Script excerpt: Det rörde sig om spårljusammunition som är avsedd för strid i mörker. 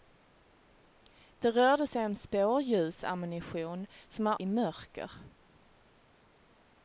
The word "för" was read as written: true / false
false